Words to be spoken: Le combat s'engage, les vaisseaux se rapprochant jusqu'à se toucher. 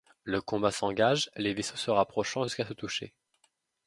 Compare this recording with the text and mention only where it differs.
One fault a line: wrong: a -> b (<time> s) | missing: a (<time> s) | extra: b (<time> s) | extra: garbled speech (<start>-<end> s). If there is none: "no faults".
no faults